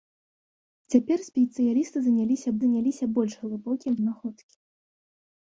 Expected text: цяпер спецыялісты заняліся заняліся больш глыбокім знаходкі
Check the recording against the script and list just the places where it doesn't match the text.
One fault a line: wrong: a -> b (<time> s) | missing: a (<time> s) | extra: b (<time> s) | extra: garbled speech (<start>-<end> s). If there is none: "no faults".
no faults